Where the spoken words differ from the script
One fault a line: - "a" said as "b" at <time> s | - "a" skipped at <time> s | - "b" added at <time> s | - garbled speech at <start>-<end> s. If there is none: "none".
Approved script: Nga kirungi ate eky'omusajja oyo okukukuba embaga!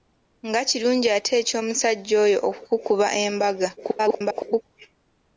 - garbled speech at 3.8-4.6 s